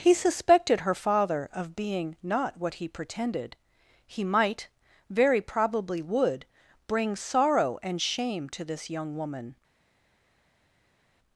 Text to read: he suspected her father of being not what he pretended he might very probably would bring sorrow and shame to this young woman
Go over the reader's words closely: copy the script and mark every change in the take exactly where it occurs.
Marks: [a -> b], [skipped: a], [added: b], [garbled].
he suspected her father of being not what he pretended he might very probably would bring sorrow and shame to this young woman